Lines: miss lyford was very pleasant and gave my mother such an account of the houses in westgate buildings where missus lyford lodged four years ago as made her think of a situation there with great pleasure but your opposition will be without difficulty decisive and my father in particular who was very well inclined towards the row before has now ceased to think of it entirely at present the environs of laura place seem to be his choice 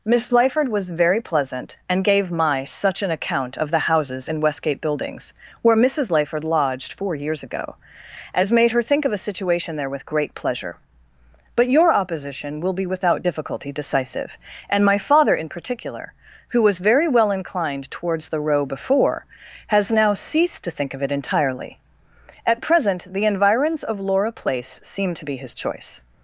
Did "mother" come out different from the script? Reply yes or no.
yes